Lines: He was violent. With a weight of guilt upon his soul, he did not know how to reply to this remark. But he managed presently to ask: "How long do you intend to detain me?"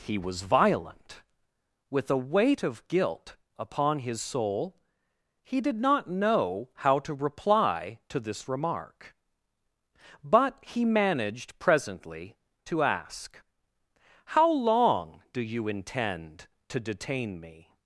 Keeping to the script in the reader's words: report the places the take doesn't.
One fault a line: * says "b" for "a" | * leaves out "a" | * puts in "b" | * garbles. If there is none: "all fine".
all fine